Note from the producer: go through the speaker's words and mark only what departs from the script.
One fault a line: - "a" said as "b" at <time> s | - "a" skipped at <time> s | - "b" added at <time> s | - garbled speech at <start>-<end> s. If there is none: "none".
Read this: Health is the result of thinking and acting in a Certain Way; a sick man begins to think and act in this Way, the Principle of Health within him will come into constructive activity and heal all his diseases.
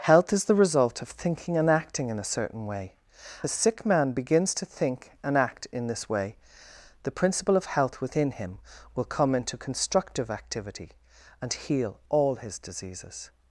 none